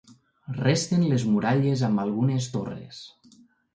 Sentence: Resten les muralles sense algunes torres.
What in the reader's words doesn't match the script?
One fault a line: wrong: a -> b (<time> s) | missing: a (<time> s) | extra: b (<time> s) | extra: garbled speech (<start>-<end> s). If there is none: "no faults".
wrong: sense -> amb (1.9 s)